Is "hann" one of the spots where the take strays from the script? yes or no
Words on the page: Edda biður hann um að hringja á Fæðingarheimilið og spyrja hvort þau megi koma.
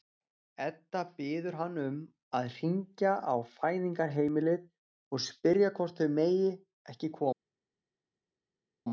no